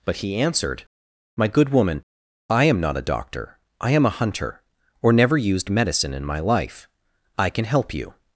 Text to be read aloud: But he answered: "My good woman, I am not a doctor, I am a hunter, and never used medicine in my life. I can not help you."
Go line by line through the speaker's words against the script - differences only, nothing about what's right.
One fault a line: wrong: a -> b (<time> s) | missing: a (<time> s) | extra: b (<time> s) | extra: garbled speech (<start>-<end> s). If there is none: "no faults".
wrong: and -> or (5.0 s)
missing: not (7.7 s)